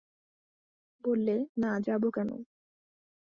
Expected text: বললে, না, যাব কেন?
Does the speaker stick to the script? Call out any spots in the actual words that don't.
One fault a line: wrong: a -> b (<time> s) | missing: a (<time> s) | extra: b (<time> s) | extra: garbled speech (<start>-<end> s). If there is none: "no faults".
no faults